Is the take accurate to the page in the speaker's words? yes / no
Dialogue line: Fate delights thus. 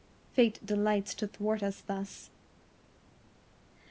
no